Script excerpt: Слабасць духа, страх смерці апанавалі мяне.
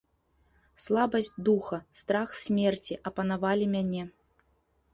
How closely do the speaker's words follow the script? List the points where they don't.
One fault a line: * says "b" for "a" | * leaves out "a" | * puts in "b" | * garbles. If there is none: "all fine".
all fine